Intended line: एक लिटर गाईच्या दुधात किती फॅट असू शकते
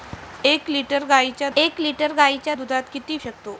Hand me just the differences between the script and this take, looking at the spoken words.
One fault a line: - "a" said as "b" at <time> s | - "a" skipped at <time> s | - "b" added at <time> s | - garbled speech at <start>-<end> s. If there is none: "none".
- "एक लिटर गाईच्या" added at 1.6 s
- "फॅट असू" skipped at 3.2 s